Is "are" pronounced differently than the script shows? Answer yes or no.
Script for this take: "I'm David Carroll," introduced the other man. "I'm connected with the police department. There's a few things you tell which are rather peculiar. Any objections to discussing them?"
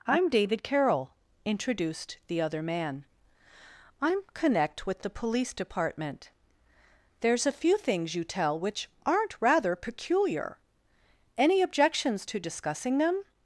yes